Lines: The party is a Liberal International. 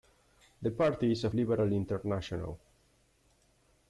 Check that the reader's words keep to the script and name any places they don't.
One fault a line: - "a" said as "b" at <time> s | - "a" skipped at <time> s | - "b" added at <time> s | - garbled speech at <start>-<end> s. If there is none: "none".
none